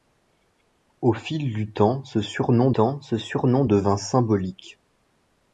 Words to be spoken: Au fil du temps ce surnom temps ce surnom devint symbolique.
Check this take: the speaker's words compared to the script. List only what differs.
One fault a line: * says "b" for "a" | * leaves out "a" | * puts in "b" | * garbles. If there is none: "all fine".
all fine